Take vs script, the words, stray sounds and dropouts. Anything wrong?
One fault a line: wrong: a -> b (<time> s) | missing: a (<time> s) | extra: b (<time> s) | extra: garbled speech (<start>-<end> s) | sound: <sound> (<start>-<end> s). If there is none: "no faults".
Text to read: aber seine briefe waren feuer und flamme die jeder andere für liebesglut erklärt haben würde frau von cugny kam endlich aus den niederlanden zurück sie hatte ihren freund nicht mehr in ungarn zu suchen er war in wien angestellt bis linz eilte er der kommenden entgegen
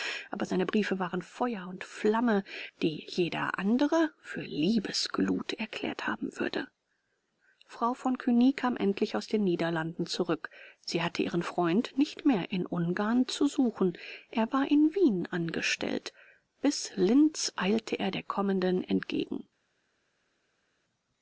no faults